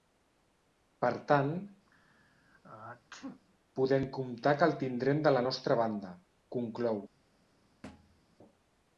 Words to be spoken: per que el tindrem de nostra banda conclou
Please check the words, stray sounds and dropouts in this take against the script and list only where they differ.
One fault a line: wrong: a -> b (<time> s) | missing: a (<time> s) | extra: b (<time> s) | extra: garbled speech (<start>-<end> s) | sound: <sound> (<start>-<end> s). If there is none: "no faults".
extra: tant podem comptar (1.3 s)
sound: sneeze (1.9-3.4 s)
extra: la (5.3 s)
sound: thud (7.8-8.2 s)